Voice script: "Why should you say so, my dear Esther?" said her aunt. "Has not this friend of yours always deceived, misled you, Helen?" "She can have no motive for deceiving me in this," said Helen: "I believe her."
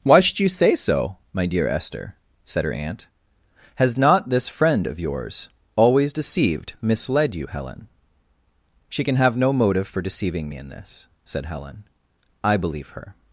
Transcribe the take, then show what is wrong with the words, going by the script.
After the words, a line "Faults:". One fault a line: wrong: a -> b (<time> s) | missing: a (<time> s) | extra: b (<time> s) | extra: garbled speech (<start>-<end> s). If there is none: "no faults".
"Why should you say so, my dear Esther?" said her aunt. "Has not this friend of yours always deceived, misled you, Helen?" "She can have no motive for deceiving me in this," said Helen: "I believe her."
Faults:
no faults